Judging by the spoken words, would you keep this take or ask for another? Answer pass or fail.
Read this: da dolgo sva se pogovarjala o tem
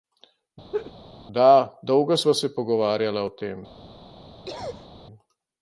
pass